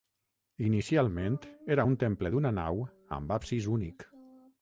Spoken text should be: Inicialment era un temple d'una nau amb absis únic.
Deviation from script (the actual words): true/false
false